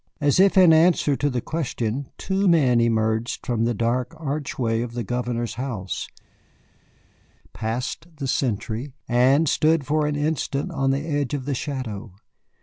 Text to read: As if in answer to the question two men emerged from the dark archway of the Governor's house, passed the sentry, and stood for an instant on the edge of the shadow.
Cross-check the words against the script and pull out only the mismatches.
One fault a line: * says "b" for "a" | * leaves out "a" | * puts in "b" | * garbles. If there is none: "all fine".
all fine